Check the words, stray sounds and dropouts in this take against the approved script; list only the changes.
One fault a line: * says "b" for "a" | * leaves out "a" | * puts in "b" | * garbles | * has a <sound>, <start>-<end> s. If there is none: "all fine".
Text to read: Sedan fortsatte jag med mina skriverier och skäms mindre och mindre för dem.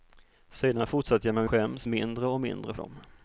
* leaves out "mina skriverier och"
* leaves out "för"